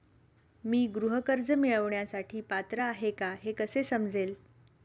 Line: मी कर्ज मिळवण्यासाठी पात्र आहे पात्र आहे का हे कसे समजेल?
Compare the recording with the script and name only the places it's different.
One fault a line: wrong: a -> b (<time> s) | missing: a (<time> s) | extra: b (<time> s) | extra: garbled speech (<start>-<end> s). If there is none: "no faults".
extra: गृह (0.9 s)
missing: पात्र आहे (3.1 s)